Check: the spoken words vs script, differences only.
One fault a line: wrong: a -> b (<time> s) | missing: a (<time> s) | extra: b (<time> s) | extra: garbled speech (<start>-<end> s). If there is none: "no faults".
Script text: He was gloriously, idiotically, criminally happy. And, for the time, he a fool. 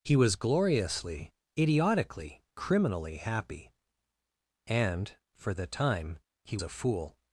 no faults